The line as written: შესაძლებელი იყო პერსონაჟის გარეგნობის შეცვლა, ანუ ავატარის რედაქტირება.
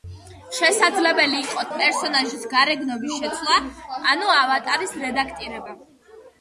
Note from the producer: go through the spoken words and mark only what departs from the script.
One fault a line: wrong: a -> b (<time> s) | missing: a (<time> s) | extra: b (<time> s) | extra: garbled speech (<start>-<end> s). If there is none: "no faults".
no faults